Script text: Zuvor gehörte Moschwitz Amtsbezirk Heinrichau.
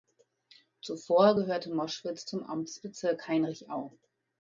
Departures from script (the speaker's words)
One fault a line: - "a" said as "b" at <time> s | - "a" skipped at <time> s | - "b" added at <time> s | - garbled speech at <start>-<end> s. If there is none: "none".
- "zum" added at 2.2 s